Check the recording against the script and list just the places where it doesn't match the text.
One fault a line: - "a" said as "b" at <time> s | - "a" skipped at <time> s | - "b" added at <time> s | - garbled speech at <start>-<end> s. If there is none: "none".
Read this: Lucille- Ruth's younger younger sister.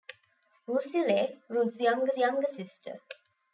none